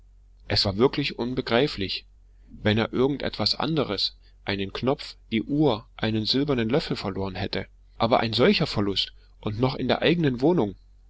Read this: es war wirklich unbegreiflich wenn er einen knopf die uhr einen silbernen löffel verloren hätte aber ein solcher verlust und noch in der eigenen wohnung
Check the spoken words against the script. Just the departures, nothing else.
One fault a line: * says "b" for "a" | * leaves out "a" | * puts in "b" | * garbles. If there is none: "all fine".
* puts in "irgend etwas anderes"